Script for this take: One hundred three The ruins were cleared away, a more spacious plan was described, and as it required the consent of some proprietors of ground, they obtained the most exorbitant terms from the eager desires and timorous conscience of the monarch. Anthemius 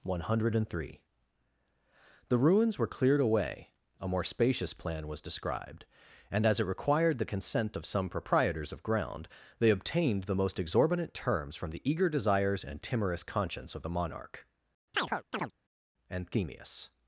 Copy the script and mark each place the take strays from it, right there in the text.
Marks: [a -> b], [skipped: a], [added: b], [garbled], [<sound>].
One hundred three The ruins were cleared away, a more spacious plan was described, and as it required the consent of some proprietors of ground, they obtained the most exorbitant terms from the eager desires and timorous conscience of the monarch. [chirp] Anthemius